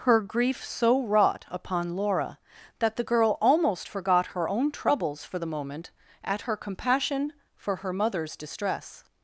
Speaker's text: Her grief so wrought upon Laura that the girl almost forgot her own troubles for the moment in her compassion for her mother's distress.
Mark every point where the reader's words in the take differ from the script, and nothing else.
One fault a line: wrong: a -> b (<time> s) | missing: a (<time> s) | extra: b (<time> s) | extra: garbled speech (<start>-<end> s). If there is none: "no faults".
wrong: in -> at (6.2 s)